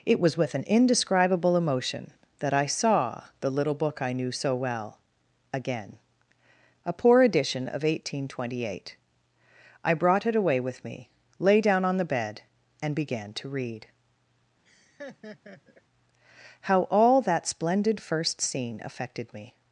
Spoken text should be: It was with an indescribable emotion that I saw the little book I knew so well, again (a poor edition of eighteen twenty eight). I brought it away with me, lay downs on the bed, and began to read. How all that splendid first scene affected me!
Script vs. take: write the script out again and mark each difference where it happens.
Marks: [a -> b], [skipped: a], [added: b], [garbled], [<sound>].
It was with an indescribable emotion that I saw the little book I knew so well, again (a poor edition of eighteen twenty eight). I brought it away with me, lay [downs -> down] on the bed, and began to read. [laugh] How all that splendid first scene affected me!